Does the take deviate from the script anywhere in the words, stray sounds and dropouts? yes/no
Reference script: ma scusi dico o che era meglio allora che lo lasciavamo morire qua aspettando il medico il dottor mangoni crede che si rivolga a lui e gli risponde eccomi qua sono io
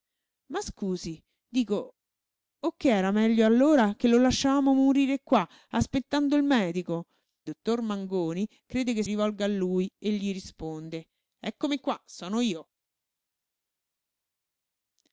yes